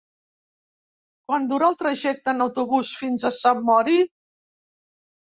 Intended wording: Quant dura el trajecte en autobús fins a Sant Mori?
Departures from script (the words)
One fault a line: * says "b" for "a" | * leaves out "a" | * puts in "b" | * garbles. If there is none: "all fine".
all fine